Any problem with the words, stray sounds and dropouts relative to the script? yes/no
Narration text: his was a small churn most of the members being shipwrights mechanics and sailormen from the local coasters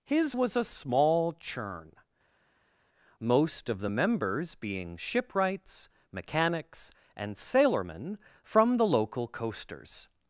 no